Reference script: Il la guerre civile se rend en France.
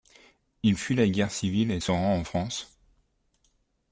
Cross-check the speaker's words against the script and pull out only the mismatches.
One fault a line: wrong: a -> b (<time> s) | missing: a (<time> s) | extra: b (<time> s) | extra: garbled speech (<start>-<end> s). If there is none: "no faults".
extra: fuit (0.8 s)
extra: et (1.7 s)